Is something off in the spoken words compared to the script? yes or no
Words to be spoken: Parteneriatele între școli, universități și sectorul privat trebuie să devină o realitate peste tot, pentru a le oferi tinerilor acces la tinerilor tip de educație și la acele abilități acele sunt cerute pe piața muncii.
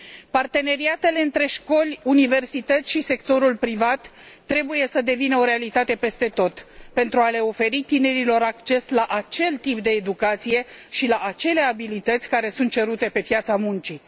yes